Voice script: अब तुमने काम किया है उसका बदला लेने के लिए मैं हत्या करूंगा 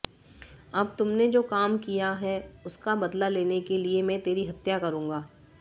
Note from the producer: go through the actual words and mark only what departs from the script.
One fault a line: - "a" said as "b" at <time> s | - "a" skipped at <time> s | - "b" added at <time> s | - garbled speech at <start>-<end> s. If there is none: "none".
- "जो" added at 1.3 s
- "तेरी" added at 4.2 s